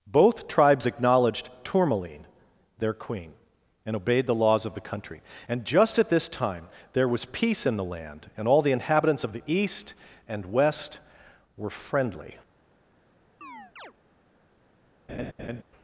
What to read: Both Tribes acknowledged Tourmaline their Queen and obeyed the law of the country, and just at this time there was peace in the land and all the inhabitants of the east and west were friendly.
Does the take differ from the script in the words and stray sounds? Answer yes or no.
yes